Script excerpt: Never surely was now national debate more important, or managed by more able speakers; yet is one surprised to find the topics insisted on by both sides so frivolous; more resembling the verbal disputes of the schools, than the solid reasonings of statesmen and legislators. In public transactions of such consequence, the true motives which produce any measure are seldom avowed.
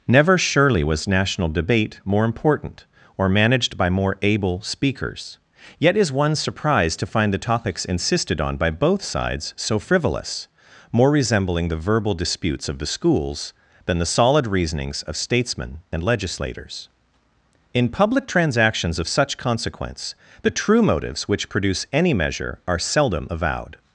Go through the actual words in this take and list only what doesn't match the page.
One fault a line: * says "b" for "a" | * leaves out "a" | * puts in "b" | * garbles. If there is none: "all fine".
* leaves out "now"